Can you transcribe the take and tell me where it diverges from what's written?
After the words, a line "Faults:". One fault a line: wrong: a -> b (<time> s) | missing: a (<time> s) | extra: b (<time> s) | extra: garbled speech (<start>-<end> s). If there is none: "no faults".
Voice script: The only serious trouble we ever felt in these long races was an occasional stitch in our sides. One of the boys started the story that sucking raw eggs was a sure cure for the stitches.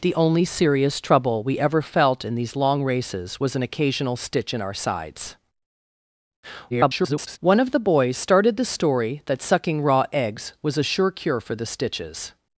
The only serious trouble we ever felt in these long races was an occasional stitch in our sides. [garbled] One of the boys started the story that sucking raw eggs was a sure cure for the stitches.
Faults:
extra: garbled speech (6.7-7.4 s)